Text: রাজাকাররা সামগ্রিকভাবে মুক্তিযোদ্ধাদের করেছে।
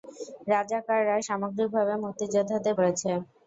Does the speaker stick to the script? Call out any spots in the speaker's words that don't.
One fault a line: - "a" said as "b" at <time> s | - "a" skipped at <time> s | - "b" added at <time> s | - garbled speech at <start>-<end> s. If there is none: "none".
none